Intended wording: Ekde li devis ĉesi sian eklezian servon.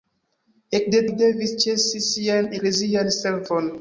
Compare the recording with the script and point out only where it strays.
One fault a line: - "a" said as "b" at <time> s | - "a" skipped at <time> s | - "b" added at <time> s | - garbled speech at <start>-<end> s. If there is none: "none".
none